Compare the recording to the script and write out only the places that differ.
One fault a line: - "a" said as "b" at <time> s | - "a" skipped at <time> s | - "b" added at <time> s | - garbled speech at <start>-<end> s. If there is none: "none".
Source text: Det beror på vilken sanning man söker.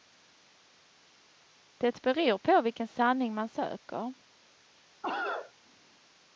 none